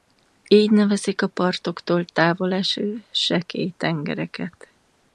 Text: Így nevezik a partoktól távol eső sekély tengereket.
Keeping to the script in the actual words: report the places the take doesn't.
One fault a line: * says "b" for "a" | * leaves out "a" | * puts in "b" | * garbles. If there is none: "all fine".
all fine